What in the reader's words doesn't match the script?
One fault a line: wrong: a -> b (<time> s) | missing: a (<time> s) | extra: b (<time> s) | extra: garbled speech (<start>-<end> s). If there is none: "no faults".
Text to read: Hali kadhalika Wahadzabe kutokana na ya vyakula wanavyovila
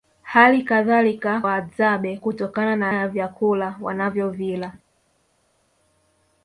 no faults